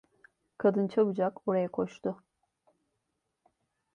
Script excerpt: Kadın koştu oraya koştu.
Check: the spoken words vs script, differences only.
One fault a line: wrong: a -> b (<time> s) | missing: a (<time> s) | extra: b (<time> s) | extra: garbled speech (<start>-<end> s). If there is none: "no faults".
wrong: koştu -> çabucak (0.9 s)